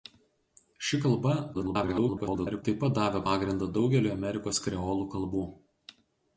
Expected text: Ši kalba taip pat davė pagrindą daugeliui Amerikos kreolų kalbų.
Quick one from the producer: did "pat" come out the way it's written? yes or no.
yes